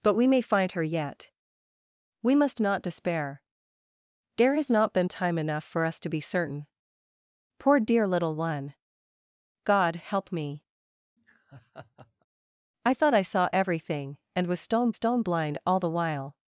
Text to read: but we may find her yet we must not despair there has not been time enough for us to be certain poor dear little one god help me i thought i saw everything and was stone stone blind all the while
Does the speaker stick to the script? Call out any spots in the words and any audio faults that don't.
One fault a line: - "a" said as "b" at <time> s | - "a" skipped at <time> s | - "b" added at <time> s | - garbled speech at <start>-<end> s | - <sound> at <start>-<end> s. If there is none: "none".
- laugh at 11.2-12.3 s